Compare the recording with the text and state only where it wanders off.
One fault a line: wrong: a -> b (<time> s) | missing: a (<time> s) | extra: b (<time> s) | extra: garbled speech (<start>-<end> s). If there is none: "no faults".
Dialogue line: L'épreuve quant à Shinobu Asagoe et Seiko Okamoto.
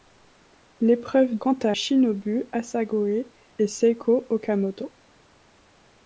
no faults